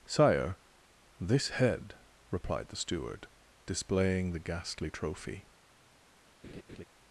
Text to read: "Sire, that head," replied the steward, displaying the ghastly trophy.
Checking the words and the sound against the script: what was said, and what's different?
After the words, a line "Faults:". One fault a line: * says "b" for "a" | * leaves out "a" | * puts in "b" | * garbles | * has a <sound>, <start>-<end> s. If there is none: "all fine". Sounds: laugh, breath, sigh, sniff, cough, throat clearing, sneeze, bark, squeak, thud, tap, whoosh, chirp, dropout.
"Sire, this head," replied the steward, displaying the ghastly trophy.
Faults:
* says "this" for "that"
* has a laugh, 6.4-6.8 s